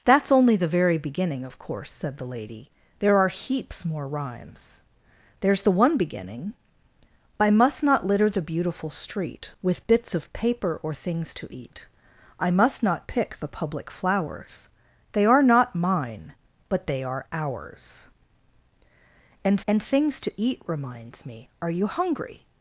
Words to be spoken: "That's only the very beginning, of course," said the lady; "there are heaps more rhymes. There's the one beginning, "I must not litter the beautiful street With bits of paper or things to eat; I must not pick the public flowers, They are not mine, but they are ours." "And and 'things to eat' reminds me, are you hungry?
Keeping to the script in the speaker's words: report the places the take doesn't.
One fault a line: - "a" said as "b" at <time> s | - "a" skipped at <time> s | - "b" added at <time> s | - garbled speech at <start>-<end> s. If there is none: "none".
none